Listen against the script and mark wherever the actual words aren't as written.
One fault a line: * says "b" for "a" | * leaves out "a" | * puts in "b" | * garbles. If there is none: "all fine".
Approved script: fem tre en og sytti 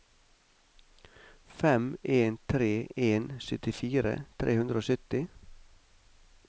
* puts in "en"
* puts in "syttifire tre hundre"